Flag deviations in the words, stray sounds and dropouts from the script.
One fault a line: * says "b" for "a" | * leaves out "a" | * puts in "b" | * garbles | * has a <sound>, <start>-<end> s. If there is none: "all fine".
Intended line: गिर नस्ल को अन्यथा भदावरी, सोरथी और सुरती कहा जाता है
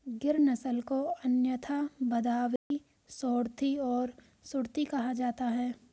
* has a dropout, 2.6-2.7 s